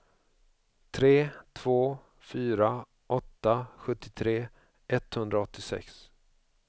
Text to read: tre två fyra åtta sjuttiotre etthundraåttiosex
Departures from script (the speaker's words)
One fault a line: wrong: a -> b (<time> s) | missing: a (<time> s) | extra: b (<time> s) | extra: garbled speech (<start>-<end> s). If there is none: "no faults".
no faults